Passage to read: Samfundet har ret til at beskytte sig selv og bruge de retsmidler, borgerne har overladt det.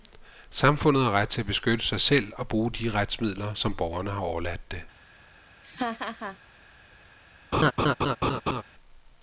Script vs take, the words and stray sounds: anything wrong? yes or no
yes